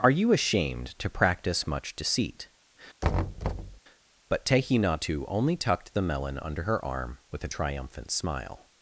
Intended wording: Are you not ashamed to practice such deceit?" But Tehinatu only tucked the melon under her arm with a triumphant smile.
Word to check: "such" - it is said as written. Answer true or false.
false